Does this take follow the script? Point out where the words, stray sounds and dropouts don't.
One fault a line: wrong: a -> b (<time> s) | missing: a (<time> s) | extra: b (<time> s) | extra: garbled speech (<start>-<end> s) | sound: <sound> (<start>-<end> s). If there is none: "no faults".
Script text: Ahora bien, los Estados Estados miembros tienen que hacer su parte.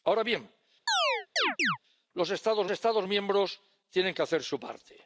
sound: chirp (0.9-1.8 s)